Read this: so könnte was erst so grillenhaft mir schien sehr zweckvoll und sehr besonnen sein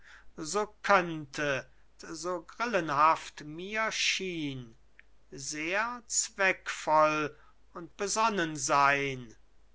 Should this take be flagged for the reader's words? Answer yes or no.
yes